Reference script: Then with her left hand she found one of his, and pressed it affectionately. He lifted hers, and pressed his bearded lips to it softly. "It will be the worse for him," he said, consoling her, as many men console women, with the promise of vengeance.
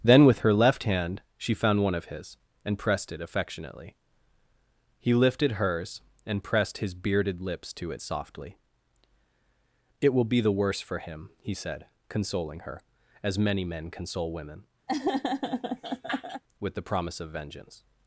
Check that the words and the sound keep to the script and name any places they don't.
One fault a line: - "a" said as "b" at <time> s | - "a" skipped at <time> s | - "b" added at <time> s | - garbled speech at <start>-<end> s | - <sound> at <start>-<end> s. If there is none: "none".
- laugh at 14.9-16.4 s